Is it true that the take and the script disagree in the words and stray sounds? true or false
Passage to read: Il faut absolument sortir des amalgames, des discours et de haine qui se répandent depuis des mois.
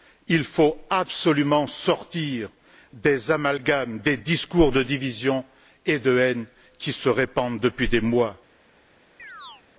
true